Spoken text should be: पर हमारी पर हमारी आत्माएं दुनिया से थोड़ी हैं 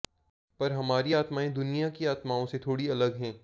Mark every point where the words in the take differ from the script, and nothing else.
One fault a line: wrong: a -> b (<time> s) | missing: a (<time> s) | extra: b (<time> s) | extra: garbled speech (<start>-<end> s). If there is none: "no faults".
wrong: पर हमारी आत्माएं दुनिया -> आत्माएं दुनिया की आत्माओं (1.1 s)
extra: अलग (2.9 s)